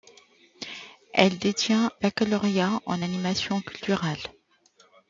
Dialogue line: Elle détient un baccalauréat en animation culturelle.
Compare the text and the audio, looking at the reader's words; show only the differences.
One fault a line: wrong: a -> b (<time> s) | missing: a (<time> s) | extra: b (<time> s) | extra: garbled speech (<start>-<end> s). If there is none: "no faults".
missing: un (1.9 s)